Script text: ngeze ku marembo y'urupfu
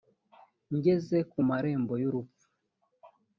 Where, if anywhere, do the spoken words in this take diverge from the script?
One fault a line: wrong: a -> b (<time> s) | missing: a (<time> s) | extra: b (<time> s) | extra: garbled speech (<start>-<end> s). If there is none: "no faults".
no faults